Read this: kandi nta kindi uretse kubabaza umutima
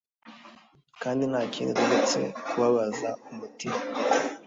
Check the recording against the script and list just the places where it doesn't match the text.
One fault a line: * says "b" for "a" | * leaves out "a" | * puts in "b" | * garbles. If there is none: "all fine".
all fine